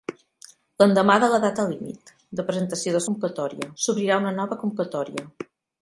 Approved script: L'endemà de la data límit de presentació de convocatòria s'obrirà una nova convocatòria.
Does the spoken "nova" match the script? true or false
true